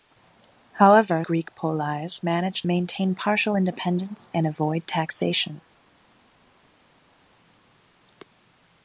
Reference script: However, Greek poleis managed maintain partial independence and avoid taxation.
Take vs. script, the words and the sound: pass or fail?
pass